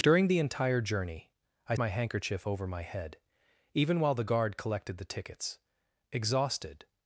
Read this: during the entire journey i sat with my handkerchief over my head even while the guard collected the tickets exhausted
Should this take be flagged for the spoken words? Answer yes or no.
yes